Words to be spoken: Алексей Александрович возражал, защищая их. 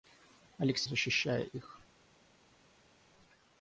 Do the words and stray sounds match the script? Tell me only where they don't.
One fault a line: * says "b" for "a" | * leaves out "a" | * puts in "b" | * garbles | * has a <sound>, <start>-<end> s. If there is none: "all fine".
* leaves out "Александрович возражал"